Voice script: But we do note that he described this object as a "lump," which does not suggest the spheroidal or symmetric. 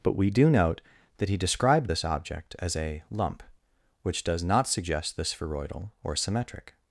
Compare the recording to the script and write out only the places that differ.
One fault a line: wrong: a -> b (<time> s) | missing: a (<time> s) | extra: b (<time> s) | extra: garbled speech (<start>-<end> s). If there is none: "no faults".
no faults